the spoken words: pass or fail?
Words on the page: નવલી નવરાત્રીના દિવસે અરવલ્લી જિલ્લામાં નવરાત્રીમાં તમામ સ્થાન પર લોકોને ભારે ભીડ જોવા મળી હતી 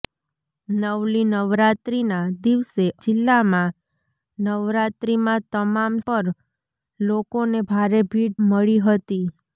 fail